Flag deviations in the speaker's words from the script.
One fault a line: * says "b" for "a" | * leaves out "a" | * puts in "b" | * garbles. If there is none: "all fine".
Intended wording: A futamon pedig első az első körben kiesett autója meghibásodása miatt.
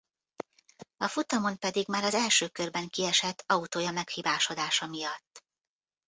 * says "már" for "első"